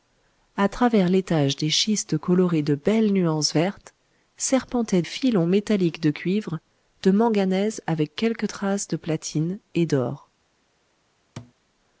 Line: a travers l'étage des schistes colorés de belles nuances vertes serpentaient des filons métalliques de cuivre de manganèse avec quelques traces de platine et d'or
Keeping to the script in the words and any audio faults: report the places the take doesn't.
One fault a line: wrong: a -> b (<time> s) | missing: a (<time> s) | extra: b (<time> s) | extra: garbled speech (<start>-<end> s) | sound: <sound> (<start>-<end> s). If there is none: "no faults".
missing: des (5.0 s)
sound: thud (11.4-11.5 s)